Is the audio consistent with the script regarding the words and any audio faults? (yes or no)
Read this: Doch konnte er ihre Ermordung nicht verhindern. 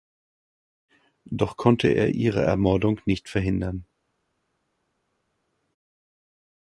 yes